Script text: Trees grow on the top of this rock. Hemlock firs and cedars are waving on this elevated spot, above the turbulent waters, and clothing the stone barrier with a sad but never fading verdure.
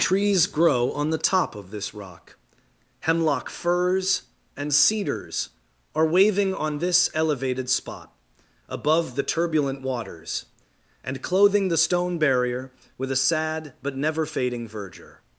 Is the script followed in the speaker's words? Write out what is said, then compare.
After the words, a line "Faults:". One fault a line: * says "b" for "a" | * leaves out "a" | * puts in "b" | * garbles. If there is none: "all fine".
Trees grow on the top of this rock. Hemlock firs and cedars are waving on this elevated spot, above the turbulent waters, and clothing the stone barrier with a sad but never fading verdure.
Faults:
all fine